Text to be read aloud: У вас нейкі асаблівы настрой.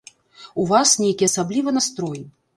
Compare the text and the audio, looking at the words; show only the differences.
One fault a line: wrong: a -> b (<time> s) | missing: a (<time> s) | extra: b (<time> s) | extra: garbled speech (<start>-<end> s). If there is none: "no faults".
no faults